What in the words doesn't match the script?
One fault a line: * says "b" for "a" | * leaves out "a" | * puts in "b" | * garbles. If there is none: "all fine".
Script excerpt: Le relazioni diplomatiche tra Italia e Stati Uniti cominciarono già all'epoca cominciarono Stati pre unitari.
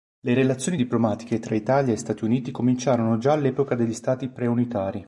* says "degli" for "cominciarono"